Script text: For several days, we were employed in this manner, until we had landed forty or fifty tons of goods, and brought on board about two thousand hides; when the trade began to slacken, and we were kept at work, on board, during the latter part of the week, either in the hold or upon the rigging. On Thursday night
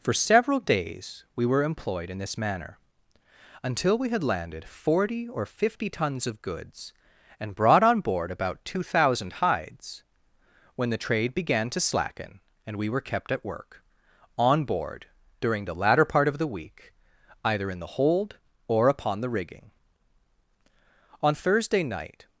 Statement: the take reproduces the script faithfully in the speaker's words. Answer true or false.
true